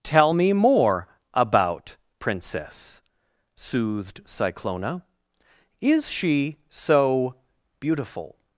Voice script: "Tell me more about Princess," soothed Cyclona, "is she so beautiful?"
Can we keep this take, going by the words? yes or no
yes